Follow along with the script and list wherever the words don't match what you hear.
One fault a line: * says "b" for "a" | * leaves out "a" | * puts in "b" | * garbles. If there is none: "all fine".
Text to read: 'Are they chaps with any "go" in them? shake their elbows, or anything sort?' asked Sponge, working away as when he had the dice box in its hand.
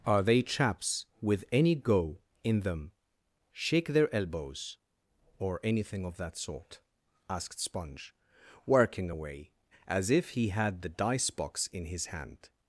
* puts in "of that"
* says "if" for "when"
* says "his" for "its"